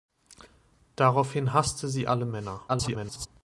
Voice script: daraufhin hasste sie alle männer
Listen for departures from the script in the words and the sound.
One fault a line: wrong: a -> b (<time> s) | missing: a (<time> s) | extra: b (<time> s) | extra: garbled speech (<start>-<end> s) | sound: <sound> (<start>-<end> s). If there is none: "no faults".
extra: garbled speech (2.7-3.3 s)